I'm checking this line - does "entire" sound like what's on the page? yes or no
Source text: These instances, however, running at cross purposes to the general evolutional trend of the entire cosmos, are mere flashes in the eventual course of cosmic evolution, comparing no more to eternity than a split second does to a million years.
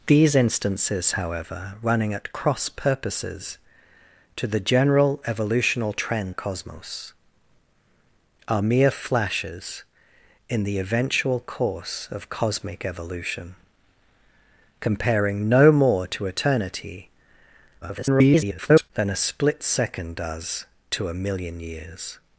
no